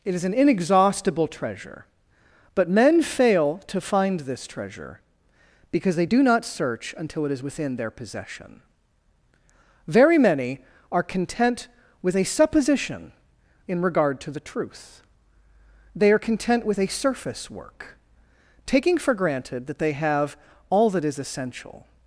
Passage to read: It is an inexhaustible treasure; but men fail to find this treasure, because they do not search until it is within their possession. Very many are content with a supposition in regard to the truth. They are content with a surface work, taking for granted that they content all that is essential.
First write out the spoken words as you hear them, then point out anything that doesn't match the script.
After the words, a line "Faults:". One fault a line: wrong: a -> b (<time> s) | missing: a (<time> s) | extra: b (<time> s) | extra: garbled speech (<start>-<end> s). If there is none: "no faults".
It is an inexhaustible treasure; but men fail to find this treasure, because they do not search until it is within their possession. Very many are content with a supposition in regard to the truth. They are content with a surface work, taking for granted that they have all that is essential.
Faults:
wrong: content -> have (19.9 s)